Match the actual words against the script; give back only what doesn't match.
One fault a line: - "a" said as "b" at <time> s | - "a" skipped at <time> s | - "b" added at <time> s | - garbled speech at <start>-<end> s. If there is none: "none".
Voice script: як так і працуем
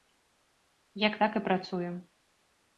none